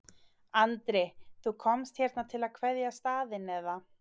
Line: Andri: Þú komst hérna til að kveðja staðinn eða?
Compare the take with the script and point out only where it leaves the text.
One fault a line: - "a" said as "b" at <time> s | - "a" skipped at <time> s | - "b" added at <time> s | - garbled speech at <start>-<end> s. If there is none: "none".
none